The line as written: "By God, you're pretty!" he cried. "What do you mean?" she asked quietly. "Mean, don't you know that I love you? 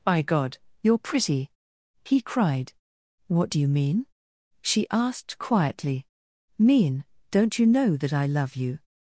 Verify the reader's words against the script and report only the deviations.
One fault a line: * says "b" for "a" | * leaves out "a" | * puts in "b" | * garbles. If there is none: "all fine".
all fine